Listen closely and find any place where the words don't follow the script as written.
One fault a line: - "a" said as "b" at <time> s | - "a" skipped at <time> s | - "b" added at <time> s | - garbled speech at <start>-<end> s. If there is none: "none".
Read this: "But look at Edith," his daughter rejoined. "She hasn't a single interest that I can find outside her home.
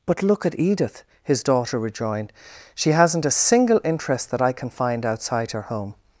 none